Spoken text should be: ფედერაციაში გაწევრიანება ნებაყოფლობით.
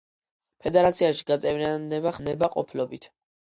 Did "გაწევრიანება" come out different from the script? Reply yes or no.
no